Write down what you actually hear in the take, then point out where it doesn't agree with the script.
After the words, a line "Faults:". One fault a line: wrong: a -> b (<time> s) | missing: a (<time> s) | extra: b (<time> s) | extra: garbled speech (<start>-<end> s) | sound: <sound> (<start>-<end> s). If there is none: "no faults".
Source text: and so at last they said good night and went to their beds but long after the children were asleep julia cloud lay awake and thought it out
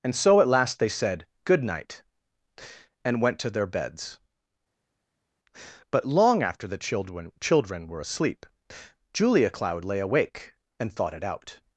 and so at last they said good night and went to their beds but long after the children children were asleep julia cloud lay awake and thought it out
Faults:
extra: children (7.4 s)